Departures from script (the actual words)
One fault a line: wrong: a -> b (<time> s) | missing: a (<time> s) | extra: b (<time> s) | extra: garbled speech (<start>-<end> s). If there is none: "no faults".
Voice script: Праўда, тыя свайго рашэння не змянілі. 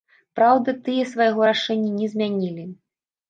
no faults